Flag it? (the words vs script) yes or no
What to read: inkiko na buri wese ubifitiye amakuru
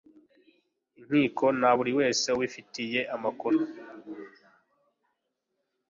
no